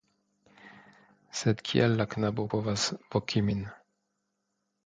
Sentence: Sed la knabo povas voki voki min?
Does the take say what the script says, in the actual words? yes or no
no